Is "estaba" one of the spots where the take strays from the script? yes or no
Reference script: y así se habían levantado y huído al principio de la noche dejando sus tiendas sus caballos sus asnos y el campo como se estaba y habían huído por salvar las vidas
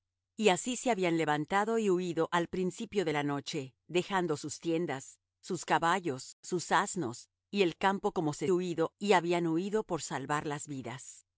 yes